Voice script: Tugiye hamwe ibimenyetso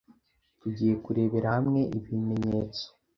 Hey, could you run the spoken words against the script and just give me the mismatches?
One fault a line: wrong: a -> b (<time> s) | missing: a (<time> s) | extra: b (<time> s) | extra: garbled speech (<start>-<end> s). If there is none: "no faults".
extra: kurebera (1.0 s)